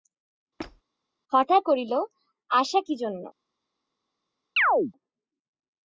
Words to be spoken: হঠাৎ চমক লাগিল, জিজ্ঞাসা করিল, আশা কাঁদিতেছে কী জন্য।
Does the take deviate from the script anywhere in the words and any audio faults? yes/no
yes